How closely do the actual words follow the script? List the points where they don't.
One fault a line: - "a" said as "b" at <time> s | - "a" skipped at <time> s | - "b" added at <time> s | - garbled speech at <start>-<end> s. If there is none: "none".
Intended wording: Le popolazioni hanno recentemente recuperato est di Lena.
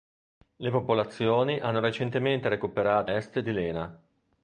none